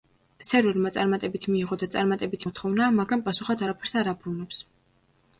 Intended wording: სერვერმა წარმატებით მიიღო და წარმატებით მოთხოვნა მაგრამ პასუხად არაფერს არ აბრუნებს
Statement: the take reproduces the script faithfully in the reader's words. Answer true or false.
true